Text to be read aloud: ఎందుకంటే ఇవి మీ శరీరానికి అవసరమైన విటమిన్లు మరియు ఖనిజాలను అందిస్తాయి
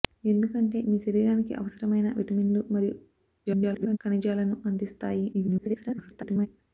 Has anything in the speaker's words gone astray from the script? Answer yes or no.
yes